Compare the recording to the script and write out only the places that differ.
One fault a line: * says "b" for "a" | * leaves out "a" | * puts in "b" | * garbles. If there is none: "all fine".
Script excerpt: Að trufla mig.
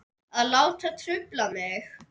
* puts in "láta"